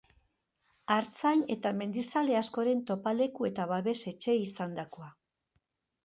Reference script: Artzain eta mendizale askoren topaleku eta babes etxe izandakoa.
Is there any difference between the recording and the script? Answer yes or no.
no